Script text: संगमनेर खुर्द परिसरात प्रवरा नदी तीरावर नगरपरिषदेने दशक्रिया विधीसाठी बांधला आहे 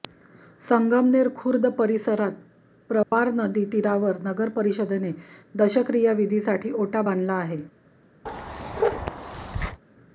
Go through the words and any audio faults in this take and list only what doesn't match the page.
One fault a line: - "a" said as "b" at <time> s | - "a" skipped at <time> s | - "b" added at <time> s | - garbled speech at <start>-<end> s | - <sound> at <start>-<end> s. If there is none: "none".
- dropout at 3.0-3.1 s
- "ओटा" added at 6.8 s
- bark at 8.3-9.8 s